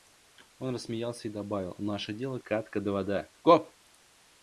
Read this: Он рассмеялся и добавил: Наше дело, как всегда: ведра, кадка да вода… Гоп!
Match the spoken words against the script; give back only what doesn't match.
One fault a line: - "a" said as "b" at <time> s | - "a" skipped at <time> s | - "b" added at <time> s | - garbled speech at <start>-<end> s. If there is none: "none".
- "как всегда ведра" skipped at 2.4 s